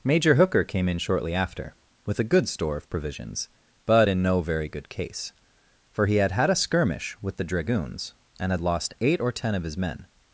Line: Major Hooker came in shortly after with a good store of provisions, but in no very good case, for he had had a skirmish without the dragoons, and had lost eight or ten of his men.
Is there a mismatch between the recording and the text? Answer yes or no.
yes